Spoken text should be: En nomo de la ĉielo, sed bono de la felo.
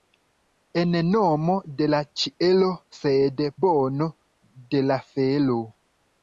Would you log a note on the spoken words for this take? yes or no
no